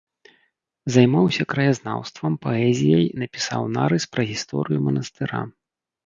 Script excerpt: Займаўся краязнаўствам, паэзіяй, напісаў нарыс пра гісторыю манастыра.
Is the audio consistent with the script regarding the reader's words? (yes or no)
yes